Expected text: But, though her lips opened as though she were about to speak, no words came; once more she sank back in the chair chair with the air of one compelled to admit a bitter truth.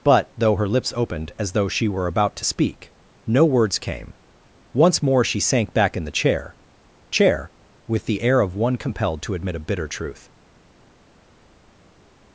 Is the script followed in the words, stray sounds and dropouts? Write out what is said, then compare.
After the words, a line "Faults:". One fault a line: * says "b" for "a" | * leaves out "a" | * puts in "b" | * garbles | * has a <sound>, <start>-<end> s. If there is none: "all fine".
But, though her lips opened as though she were about to speak, no words came; once more she sank back in the chair chair with the air of one compelled to admit a bitter truth.
Faults:
all fine